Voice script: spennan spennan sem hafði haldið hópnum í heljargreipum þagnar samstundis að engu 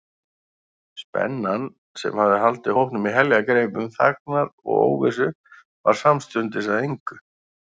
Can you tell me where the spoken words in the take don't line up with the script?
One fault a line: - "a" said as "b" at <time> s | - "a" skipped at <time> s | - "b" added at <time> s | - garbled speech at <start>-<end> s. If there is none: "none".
- "spennan" skipped at 1.7 s
- "og óvissu varð" added at 4.5 s